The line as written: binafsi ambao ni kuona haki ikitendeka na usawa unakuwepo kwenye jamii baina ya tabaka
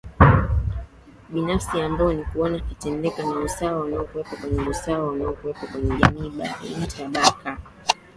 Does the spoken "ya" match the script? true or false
false